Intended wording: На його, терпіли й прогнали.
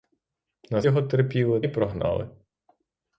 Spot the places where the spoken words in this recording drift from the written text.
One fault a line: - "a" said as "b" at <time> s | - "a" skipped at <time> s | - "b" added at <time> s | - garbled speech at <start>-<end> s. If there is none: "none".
none